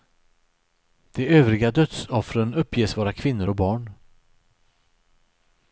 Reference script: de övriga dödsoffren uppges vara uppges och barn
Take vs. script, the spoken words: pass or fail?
fail